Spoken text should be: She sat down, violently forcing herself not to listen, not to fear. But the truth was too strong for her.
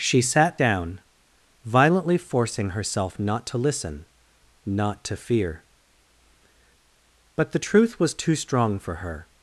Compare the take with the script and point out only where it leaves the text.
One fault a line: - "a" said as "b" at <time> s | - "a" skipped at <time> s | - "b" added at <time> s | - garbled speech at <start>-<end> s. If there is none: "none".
none